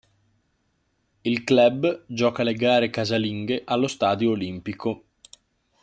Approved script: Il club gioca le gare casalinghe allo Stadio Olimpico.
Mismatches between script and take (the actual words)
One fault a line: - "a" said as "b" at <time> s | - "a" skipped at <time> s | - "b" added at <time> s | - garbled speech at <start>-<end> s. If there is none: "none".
none